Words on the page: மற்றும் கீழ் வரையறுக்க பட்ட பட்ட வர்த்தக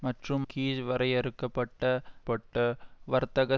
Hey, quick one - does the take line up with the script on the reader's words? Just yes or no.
yes